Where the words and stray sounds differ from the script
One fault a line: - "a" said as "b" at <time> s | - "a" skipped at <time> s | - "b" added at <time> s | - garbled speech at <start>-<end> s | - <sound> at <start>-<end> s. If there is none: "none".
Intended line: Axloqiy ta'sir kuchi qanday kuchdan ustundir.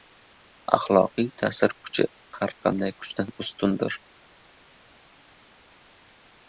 - "har" added at 2.4 s